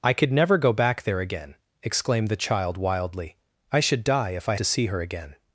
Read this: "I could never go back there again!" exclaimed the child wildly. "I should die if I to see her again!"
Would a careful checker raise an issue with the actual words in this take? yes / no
no